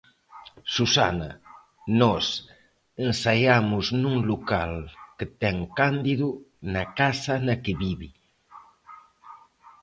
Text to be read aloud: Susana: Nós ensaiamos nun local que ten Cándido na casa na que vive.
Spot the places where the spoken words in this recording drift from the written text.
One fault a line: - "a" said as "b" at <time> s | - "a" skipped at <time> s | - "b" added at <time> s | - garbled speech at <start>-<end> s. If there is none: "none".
none